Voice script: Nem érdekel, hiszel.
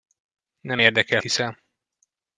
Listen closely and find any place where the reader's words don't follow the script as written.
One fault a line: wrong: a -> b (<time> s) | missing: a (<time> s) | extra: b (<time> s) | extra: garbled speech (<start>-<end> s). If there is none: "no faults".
no faults